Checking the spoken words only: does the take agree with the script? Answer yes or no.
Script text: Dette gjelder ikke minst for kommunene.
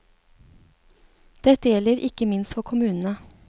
yes